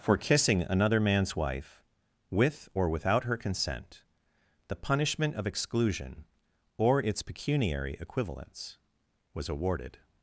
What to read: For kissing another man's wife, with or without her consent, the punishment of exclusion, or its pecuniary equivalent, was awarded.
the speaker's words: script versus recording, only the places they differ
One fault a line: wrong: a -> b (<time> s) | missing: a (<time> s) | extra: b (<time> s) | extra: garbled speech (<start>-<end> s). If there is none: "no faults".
wrong: equivalent -> equivalents (8.0 s)